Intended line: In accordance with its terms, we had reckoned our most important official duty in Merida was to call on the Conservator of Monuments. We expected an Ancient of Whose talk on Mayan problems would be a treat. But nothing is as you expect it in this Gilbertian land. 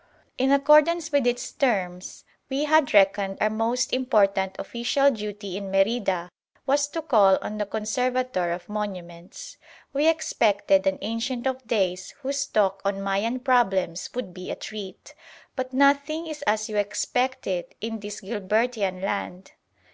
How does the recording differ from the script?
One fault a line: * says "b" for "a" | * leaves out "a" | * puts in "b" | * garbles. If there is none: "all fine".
* puts in "Days"